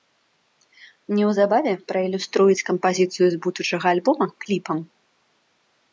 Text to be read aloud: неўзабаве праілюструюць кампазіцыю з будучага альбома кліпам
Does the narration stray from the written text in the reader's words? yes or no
no